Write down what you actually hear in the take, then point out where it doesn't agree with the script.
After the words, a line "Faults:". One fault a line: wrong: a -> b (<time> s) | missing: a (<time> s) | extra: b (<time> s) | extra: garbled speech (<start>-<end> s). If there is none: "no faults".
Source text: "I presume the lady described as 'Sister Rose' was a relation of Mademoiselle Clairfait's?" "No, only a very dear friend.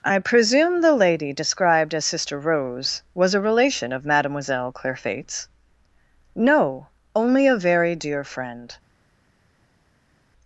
"I presume the lady described as 'Sister Rose' was a relation of Mademoiselle Clairfait's?" "No, only a very dear friend.
Faults:
no faults